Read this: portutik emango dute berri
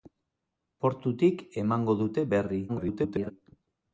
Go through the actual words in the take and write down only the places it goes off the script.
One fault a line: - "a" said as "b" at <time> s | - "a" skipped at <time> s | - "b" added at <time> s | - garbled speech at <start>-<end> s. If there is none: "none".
- garbled speech at 2.7-3.3 s